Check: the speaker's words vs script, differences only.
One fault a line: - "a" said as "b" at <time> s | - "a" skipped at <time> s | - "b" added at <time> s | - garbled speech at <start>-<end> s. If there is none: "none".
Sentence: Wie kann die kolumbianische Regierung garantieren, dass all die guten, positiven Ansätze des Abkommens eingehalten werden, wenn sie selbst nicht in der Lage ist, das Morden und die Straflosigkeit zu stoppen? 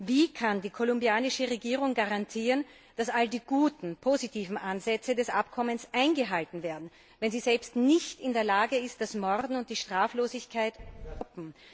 none